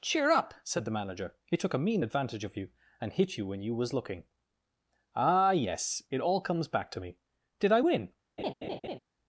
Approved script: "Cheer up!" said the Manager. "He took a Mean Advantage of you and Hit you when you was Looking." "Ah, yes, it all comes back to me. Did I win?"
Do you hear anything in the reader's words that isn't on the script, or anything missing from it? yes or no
no